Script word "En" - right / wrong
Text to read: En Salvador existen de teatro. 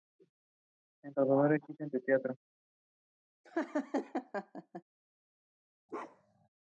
right